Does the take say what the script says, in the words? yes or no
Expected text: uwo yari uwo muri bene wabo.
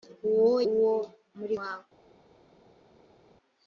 no